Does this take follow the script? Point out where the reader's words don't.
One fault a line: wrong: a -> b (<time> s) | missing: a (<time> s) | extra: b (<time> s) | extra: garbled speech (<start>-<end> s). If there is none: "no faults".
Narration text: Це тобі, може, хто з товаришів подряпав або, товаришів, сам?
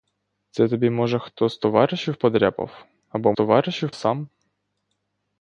no faults